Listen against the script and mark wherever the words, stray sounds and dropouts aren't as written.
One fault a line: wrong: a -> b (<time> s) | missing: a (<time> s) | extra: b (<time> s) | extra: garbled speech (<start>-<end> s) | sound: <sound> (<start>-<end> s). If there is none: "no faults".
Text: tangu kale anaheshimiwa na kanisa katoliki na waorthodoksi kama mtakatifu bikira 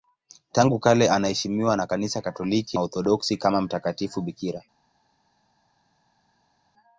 missing: na (2.8 s)